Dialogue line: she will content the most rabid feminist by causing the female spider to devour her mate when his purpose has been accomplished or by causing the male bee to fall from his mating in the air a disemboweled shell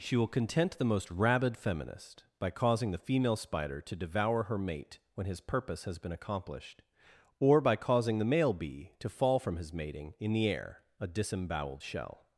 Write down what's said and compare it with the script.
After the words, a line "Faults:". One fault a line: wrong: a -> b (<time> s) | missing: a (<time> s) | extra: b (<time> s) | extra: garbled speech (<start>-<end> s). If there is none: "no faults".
she will content the most rabid feminist by causing the female spider to devour her mate when his purpose has been accomplished or by causing the male bee to fall from his mating in the air a disemboweled shell
Faults:
no faults